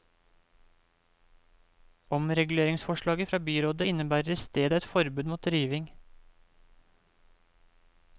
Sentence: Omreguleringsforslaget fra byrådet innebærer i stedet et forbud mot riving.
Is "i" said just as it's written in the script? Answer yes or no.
yes